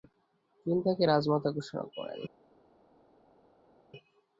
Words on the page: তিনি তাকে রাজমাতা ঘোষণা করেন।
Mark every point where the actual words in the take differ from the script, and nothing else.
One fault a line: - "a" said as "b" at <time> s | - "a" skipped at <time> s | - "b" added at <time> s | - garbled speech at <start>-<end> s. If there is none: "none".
none